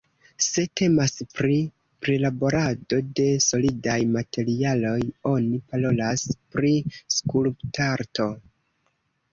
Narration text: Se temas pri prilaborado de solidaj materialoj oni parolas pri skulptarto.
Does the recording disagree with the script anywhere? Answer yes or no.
no